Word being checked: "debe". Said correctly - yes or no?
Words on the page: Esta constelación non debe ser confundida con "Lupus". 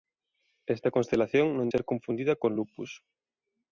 no